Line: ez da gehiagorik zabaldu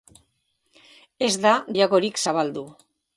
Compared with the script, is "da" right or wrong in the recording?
right